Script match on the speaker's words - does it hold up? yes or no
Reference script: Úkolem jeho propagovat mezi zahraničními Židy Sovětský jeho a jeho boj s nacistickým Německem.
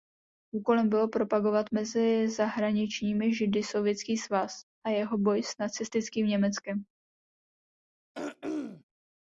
no